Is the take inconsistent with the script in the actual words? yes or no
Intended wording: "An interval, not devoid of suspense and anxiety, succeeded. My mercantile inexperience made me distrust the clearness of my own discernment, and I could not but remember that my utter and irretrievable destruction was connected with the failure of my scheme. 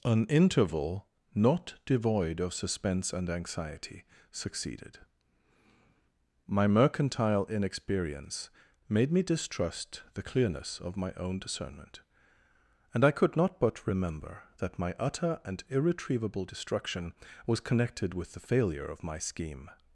no